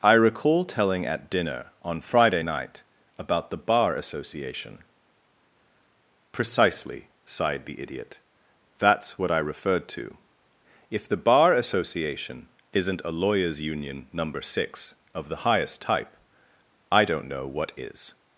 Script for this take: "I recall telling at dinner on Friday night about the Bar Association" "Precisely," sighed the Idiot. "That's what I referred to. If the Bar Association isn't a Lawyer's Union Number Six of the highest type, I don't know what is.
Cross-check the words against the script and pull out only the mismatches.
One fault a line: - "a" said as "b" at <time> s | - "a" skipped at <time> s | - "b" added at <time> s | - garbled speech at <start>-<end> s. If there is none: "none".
none